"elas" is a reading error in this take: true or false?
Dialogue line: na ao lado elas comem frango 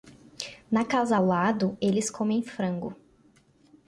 true